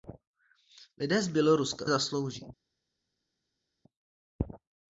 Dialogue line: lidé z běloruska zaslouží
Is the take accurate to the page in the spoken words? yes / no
yes